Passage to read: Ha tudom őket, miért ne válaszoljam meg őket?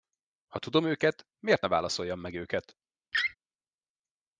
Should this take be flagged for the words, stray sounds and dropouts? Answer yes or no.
yes